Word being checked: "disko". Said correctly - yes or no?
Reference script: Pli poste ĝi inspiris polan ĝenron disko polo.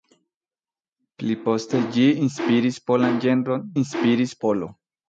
no